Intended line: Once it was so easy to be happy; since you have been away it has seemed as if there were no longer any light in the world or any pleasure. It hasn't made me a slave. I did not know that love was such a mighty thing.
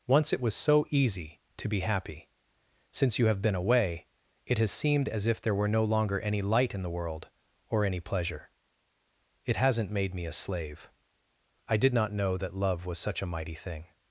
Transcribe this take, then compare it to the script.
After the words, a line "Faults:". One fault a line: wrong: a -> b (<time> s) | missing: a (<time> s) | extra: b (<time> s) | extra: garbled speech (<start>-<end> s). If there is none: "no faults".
Once it was so easy to be happy; since you have been away it has seemed as if there were no longer any light in the world or any pleasure. It hasn't made me a slave. I did not know that love was such a mighty thing.
Faults:
no faults